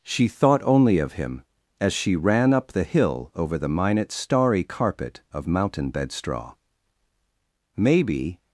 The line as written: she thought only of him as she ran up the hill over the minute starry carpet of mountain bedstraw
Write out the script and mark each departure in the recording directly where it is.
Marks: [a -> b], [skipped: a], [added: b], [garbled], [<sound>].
she thought only of him as she ran up the hill over the minute starry carpet of mountain bedstraw [added: maybe]